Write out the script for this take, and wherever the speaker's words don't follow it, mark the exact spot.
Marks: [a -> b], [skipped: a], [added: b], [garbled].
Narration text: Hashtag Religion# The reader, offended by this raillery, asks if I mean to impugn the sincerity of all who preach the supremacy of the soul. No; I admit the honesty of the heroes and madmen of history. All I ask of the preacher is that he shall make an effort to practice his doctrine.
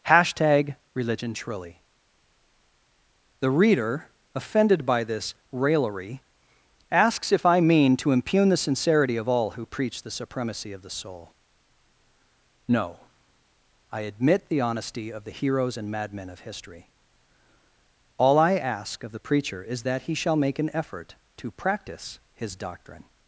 Hashtag Religion# [added: truly] The reader, offended by this raillery, asks if I mean to impugn the sincerity of all who preach the supremacy of the soul. No; I admit the honesty of the heroes and madmen of history. All I ask of the preacher is that he shall make an effort to practice his doctrine.